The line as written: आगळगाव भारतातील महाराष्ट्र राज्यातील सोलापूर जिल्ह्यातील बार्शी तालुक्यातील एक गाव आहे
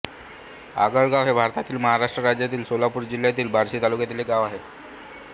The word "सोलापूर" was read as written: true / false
true